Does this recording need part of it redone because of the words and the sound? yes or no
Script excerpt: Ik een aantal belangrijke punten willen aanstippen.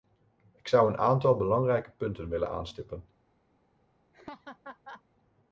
yes